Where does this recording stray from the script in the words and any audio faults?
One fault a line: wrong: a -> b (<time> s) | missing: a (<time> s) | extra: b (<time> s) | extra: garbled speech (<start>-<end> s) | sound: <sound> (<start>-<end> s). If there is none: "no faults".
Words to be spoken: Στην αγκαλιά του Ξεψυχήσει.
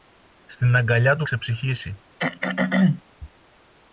sound: throat clearing (2.2-3.0 s)